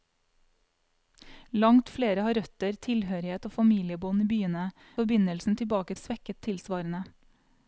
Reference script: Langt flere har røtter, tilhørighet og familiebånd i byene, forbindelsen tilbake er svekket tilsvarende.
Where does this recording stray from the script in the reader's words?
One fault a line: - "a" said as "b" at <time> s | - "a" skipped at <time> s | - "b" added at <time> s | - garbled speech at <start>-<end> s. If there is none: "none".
none